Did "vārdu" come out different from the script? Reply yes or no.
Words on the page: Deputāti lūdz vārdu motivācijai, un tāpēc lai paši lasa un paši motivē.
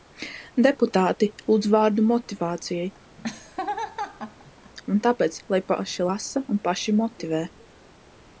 no